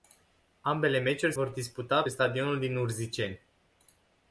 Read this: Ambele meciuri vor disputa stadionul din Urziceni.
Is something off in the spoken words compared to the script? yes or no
no